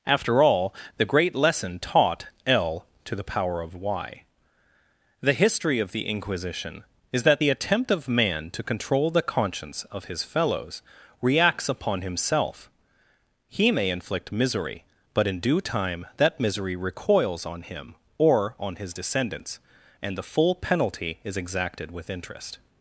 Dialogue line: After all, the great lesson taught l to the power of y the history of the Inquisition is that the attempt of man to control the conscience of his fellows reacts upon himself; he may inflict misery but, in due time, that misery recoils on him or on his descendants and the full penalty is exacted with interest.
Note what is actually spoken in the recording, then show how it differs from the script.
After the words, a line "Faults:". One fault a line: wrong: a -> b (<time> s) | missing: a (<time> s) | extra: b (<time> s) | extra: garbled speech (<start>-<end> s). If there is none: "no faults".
After all, the great lesson taught l to the power of y the history of the Inquisition is that the attempt of man to control the conscience of his fellows reacts upon himself; he may inflict misery but, in due time, that misery recoils on him or on his descendants and the full penalty is exacted with interest.
Faults:
no faults